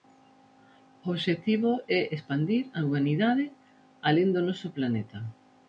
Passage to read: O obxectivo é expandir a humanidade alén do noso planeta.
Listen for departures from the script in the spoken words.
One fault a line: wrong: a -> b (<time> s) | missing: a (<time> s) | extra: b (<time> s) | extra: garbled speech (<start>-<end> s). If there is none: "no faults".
no faults